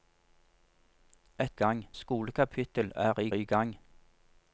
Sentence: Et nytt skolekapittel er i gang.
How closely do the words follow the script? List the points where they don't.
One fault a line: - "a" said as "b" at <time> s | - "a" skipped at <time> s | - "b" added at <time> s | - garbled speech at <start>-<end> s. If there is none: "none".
- "nytt" said as "gang" at 1.5 s
- "i" added at 3.3 s